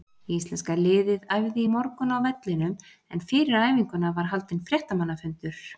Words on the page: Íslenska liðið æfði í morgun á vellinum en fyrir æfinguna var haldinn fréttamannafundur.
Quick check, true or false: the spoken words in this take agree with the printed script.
true